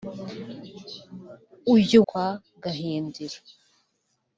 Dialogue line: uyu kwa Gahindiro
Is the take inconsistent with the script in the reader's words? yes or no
no